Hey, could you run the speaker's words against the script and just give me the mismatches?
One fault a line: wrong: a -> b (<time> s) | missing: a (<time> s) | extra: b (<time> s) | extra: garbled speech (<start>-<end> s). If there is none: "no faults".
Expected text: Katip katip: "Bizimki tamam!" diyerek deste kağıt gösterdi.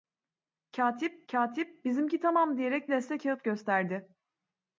no faults